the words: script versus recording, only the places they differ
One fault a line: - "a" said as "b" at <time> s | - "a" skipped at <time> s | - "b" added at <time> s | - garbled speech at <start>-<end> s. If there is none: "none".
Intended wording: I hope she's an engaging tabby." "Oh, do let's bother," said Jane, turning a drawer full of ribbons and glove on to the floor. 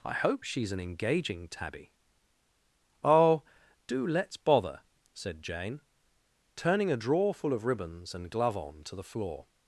none